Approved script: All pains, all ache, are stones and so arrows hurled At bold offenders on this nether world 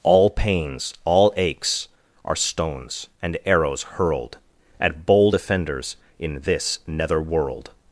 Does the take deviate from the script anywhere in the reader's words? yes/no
yes